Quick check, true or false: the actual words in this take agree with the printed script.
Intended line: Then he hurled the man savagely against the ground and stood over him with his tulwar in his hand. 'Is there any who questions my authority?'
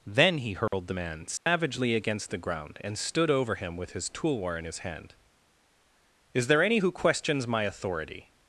true